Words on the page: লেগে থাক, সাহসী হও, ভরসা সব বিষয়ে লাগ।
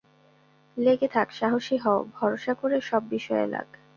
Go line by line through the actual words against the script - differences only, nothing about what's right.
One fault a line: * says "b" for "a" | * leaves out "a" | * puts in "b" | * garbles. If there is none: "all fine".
* puts in "করে"